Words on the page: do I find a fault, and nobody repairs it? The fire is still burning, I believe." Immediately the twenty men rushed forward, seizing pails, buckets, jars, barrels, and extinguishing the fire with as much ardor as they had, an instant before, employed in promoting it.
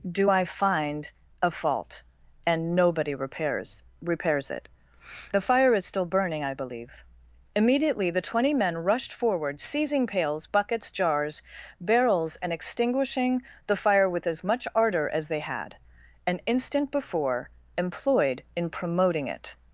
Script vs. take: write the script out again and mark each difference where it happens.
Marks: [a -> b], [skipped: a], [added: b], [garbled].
do I find a fault, and nobody repairs [added: repairs] it? The fire is still burning, I believe." Immediately the twenty men rushed forward, seizing pails, buckets, jars, barrels, and extinguishing the fire with as much ardor as they had, an instant before, employed in promoting it.